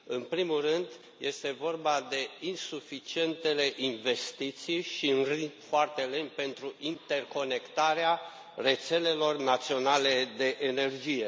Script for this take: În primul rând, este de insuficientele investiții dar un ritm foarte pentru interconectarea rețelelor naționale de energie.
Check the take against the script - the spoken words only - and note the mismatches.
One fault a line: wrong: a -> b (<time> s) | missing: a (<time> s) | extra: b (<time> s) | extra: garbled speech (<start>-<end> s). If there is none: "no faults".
extra: vorba (1.5 s)
wrong: dar -> și (4.8 s)
extra: lent (6.0 s)